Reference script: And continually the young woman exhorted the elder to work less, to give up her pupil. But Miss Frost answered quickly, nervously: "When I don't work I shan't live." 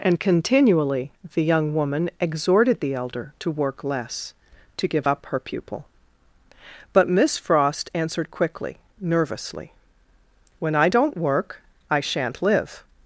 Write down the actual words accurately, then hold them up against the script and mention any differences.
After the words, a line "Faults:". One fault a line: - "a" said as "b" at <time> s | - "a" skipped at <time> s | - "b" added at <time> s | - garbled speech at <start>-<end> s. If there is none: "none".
And continually the young woman exhorted the elder to work less, to give up her pupil. But Miss Frost answered quickly, nervously: "When I don't work I shan't live."
Faults:
none